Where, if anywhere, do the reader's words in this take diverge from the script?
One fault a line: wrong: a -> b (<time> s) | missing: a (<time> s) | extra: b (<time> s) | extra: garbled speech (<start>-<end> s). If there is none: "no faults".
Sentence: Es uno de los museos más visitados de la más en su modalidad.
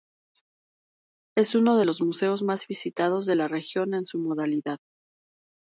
wrong: más -> región (3.5 s)